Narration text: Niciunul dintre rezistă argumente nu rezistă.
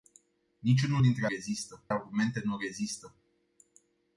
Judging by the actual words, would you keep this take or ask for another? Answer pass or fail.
pass